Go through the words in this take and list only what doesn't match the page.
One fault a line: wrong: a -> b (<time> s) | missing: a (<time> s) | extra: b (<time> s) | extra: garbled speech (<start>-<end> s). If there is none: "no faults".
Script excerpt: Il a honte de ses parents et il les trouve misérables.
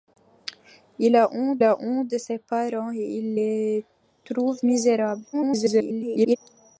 extra: a honte (1.6 s)
extra: garbled speech (5.3-6.4 s)